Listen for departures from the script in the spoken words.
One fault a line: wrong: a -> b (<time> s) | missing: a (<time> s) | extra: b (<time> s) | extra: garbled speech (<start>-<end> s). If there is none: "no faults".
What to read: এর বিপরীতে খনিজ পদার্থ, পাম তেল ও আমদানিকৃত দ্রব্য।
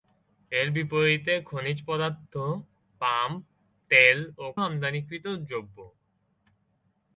no faults